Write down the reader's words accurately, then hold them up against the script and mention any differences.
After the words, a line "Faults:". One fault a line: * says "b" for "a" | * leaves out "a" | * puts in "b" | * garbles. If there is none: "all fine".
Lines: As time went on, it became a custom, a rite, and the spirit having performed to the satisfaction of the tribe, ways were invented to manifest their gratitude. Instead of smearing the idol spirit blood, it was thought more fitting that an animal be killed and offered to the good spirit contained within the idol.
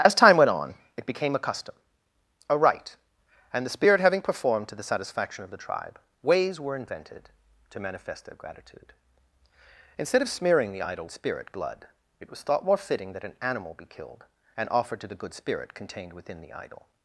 As time went on, it became a custom, a rite, and the spirit having performed to the satisfaction of the tribe, ways were invented to manifest their gratitude. Instead of smearing the idol spirit blood, it was thought more fitting that an animal be killed and offered to the good spirit contained within the idol.
Faults:
all fine